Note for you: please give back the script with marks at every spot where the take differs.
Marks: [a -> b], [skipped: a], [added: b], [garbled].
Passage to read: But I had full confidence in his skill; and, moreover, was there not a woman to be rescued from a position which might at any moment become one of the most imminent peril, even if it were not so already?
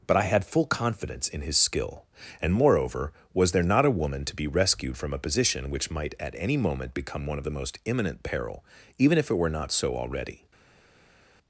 But I had full confidence in his skill; and, moreover, was there not a woman to be rescued from a position which might at any moment become one of the most imminent peril, even if it were not so already?